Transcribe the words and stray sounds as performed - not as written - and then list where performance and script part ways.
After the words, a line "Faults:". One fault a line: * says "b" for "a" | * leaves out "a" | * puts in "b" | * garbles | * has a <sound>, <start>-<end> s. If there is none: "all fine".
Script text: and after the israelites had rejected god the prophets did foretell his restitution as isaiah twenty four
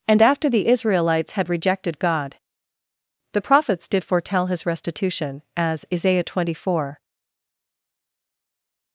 and after the israelites had rejected god the prophets did foretell his restitution as isaiah twenty four
Faults:
all fine